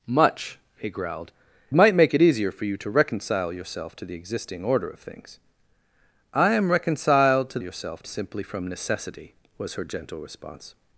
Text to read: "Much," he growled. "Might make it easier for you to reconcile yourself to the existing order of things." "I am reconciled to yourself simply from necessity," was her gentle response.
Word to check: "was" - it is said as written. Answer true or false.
true